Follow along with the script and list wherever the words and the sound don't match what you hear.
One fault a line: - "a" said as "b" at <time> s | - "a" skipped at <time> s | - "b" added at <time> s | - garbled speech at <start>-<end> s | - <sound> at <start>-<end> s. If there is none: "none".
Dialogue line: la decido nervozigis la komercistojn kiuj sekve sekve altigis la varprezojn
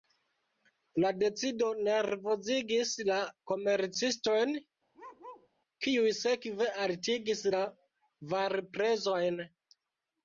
- bark at 4.9-5.5 s
- "sekve" skipped at 6.7 s